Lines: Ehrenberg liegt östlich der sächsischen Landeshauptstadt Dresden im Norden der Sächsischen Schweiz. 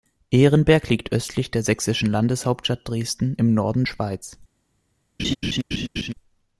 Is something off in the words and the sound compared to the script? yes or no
yes